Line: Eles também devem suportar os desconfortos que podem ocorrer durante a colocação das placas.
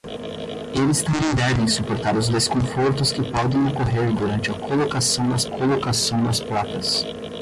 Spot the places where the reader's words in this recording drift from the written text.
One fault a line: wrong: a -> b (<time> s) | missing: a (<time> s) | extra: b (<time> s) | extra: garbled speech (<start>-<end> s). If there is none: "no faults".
extra: colocação das (5.4 s)